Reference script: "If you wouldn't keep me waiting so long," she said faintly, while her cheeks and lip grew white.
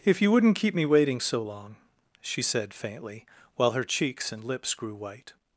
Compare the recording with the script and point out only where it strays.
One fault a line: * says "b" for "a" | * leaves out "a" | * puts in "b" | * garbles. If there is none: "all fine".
* says "lips" for "lip"